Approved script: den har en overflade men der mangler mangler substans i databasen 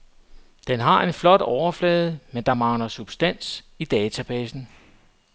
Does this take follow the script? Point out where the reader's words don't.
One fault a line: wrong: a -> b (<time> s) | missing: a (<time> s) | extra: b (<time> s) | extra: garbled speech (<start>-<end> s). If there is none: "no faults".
extra: flot (1.1 s)
missing: mangler (2.9 s)